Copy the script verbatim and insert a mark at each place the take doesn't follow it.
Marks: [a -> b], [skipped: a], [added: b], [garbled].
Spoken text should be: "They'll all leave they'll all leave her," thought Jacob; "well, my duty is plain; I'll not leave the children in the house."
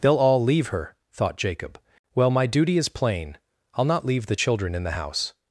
"They'll all leave [skipped: they'll all leave] her," thought Jacob; "well, my duty is plain; I'll not leave the children in the house."